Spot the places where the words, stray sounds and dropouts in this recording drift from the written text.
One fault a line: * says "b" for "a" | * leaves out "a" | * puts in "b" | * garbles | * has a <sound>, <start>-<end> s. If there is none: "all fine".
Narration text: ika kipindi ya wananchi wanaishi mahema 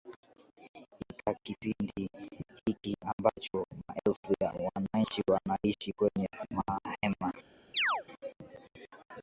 * puts in "hiki ambacho maelfu"
* puts in "kwenye"
* has a chirp, 7.7-8.0 s